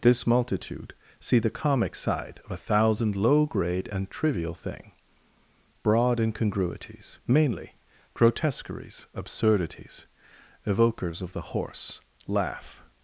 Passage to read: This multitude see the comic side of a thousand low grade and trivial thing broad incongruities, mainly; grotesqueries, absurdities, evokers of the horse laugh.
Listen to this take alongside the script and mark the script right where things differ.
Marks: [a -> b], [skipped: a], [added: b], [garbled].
This multitude see the comic side of a thousand low grade and trivial thing broad incongruities, mainly; grotesqueries, absurdities, evokers of the horse laugh.